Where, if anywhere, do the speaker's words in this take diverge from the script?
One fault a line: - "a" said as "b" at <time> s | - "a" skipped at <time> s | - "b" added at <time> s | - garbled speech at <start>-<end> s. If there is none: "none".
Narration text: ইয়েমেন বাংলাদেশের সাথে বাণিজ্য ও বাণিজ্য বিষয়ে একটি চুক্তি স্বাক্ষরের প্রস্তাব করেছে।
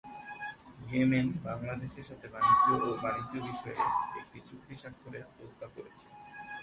none